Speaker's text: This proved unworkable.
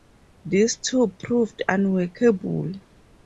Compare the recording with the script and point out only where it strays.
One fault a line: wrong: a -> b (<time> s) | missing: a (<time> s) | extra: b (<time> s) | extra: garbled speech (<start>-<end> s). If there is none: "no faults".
extra: too (0.8 s)